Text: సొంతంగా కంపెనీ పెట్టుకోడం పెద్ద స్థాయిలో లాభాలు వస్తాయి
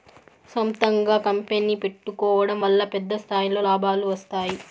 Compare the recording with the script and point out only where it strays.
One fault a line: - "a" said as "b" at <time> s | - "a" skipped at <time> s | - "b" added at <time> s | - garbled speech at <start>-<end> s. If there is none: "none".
- "వల్ల" added at 2.6 s